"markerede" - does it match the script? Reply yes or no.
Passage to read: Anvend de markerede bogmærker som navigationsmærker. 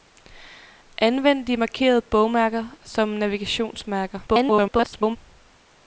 yes